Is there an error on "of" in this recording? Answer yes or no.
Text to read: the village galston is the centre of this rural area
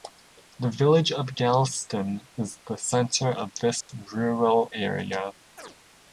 no